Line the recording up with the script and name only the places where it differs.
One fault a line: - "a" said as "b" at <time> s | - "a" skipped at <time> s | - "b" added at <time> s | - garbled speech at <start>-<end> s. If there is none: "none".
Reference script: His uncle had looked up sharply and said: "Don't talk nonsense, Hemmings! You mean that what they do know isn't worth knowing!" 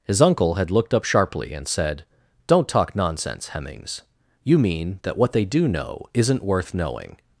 none